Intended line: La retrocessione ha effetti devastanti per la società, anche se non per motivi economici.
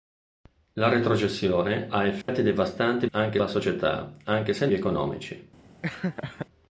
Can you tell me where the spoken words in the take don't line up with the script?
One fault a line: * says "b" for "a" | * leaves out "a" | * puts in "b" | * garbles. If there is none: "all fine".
* says "anche" for "per"
* leaves out "non per motivi"